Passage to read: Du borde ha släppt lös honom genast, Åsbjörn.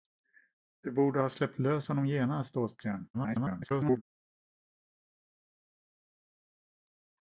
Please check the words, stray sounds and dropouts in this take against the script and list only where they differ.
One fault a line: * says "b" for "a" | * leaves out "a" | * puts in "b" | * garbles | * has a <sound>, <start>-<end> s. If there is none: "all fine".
* garbles